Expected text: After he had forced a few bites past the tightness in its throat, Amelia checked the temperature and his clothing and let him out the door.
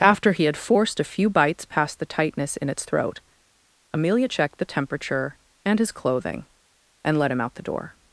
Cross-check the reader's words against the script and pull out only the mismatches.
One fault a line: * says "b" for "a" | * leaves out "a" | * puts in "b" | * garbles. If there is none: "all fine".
all fine